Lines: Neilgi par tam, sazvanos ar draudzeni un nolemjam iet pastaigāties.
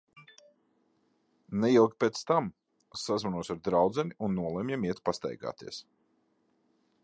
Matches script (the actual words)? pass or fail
fail